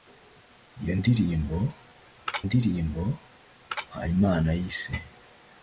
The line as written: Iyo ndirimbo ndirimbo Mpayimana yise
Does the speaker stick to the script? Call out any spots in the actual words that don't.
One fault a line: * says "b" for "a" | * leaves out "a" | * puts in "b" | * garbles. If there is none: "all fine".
all fine